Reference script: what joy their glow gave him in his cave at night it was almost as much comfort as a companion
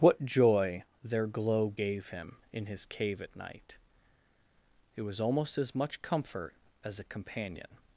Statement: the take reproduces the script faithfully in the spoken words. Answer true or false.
true